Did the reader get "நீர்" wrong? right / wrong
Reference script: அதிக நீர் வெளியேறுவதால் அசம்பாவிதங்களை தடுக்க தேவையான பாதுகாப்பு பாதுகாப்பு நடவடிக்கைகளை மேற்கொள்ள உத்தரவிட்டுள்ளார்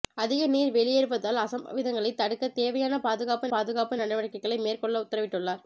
right